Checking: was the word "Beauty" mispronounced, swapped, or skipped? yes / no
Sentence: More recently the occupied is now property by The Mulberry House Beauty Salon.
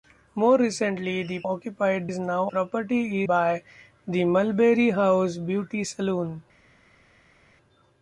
no